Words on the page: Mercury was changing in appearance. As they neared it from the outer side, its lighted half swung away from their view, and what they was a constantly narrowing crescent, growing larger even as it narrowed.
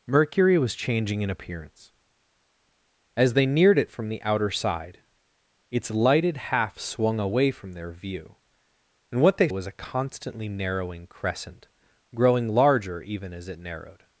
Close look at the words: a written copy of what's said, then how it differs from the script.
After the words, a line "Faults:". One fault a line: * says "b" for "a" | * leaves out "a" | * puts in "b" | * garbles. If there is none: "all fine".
Mercury was changing in appearance. As they neared it from the outer side, its lighted half swung away from their view, and what they was a constantly narrowing crescent, growing larger even as it narrowed.
Faults:
all fine